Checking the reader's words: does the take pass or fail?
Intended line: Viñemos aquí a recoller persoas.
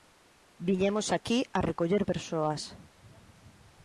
pass